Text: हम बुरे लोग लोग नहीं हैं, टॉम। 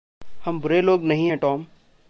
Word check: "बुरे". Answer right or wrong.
right